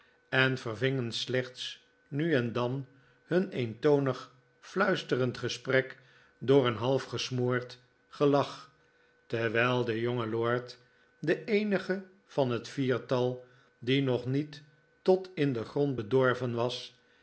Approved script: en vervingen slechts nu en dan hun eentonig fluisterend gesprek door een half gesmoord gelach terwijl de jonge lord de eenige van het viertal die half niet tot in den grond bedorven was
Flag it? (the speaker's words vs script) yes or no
yes